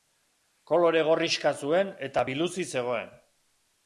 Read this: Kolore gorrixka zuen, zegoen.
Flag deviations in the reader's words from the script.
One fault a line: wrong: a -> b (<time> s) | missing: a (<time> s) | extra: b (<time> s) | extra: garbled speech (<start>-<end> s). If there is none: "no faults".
extra: eta biluzik (2.1 s)